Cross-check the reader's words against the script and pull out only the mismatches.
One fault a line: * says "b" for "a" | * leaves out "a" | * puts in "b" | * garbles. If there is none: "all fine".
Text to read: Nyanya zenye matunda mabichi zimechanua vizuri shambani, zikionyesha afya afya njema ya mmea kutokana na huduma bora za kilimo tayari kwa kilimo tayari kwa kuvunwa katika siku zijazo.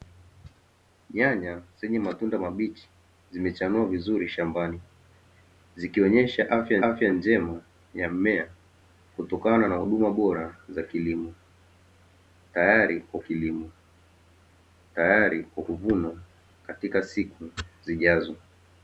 all fine